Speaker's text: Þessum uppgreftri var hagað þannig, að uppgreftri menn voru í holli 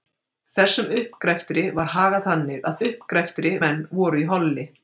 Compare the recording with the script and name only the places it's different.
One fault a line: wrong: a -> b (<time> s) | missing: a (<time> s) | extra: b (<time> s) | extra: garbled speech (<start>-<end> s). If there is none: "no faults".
no faults